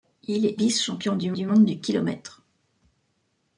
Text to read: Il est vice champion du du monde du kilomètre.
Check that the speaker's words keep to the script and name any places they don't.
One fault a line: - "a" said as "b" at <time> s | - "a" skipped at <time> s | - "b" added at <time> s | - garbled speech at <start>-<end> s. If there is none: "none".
none